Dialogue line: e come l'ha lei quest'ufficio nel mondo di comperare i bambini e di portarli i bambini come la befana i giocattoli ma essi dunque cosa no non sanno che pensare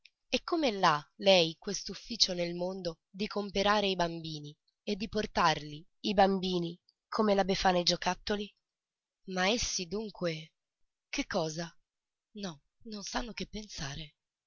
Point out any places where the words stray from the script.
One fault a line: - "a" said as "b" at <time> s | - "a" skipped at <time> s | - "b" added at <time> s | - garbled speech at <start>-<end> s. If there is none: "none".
- "che" added at 11.1 s